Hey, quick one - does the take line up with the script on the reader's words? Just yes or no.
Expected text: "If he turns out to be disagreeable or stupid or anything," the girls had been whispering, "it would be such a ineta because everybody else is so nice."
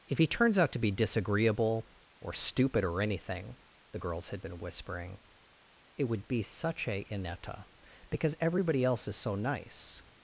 yes